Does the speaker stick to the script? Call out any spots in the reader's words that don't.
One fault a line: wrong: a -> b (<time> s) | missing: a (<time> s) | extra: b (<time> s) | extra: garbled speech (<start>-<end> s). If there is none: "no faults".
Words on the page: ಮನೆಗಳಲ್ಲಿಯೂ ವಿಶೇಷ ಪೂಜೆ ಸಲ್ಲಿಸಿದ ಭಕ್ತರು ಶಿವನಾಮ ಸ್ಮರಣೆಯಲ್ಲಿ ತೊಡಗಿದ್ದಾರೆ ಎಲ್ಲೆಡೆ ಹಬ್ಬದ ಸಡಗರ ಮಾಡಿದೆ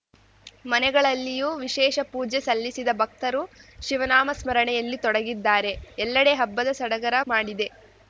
no faults